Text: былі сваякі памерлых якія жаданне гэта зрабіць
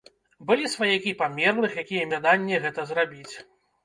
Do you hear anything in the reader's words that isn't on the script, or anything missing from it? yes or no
no